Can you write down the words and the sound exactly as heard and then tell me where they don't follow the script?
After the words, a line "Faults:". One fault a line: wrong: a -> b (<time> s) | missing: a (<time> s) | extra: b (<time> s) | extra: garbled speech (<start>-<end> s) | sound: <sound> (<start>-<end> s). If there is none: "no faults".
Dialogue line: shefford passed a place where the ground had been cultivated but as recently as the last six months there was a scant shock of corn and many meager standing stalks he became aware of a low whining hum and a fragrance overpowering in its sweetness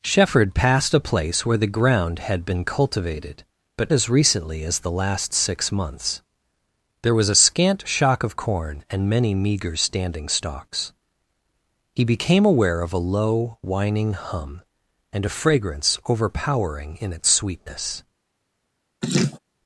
shefford passed a place where the ground had been cultivated but as recently as the last six months there was a scant shock of corn and many meager standing stalks he became aware of a low whining hum and a fragrance overpowering in its sweetness
Faults:
sound: laugh (19.0-19.4 s)